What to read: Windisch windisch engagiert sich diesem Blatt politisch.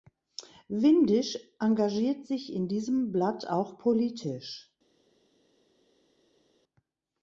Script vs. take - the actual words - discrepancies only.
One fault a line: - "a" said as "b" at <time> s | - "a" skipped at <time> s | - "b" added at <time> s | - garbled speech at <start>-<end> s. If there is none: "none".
- "windisch" skipped at 1.4 s
- "in" added at 2.5 s
- "auch" added at 3.5 s